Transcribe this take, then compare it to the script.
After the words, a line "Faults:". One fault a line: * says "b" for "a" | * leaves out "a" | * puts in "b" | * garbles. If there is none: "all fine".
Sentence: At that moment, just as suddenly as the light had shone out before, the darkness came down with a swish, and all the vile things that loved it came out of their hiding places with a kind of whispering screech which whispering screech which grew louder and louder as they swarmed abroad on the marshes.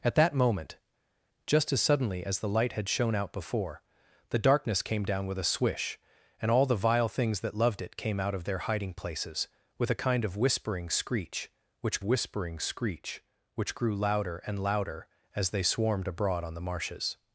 At that moment, just as suddenly as the light had shone out before, the darkness came down with a swish, and all the vile things that loved it came out of their hiding places with a kind of whispering screech which whispering screech which grew louder and louder as they swarmed abroad on the marshes.
Faults:
all fine